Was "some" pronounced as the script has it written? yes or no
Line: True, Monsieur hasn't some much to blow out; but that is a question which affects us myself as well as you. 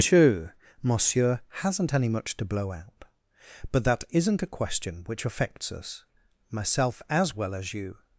no